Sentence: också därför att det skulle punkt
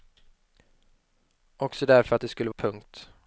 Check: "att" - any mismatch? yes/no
no